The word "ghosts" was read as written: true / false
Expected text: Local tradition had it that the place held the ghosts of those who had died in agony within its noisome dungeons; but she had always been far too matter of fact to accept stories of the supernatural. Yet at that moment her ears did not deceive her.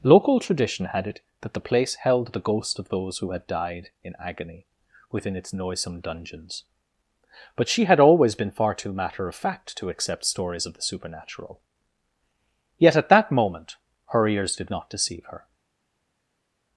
false